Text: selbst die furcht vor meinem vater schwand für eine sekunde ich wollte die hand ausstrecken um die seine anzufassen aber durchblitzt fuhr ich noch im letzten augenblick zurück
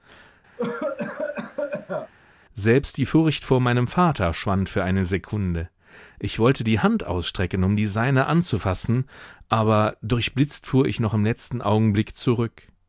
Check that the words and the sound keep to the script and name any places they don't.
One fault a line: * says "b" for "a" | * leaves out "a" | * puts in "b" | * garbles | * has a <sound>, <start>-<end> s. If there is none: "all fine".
* has a cough, 0.6-2.1 s